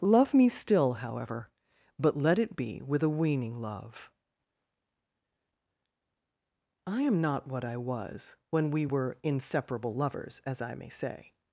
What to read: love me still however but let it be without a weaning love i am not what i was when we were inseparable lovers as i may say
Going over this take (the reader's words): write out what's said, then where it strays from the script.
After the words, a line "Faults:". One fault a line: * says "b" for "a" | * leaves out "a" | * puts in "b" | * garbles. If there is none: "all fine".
love me still however but let it be with a weaning love i am not what i was when we were inseparable lovers as i may say
Faults:
* says "with" for "without"